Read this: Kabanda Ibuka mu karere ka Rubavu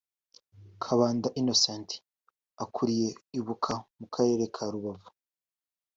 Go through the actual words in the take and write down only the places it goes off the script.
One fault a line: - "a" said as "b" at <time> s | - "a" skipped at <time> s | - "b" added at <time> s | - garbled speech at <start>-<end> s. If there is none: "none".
- "Innocent ukuriye" added at 1.4 s